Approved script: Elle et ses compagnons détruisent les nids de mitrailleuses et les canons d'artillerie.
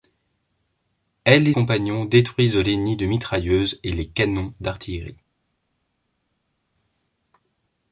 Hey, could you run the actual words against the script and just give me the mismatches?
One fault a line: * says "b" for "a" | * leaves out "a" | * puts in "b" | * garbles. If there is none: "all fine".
* leaves out "ses"